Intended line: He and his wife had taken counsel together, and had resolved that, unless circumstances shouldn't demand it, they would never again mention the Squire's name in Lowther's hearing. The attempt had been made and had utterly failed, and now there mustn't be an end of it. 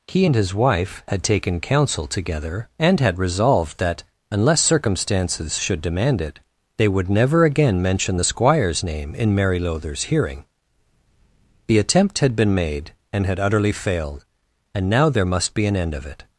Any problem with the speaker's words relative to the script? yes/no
yes